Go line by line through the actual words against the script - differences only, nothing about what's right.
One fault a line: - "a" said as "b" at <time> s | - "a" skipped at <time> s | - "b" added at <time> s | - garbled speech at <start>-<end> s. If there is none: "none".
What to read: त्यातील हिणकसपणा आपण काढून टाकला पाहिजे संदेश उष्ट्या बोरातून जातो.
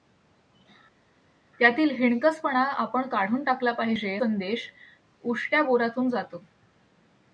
none